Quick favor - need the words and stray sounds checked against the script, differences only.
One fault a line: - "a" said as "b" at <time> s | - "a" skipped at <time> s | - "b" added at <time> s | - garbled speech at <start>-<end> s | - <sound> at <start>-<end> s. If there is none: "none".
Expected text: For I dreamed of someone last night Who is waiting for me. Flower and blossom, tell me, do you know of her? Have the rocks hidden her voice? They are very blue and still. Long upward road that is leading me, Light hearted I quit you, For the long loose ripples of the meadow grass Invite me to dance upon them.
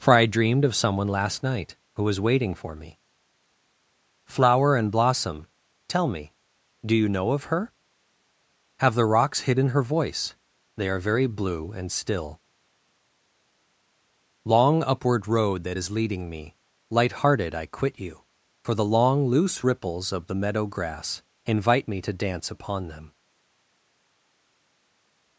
- "is" said as "was" at 2.0 s